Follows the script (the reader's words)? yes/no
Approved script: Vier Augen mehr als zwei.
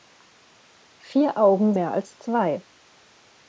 yes